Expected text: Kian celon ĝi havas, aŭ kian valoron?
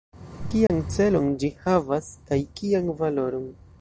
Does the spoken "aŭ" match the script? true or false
false